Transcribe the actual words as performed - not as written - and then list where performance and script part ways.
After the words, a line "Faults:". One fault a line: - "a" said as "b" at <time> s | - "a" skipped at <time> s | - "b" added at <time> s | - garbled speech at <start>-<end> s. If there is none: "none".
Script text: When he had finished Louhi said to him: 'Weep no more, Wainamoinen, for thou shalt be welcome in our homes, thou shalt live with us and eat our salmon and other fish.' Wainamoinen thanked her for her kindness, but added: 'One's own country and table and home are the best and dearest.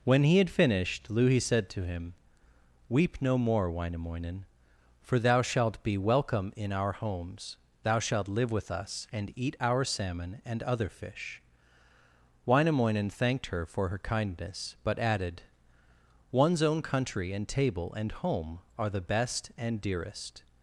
When he had finished Louhi said to him: 'Weep no more, Wainamoinen, for thou shalt be welcome in our homes, thou shalt live with us and eat our salmon and other fish.' Wainamoinen thanked her for her kindness, but added: 'One's own country and table and home are the best and dearest.
Faults:
none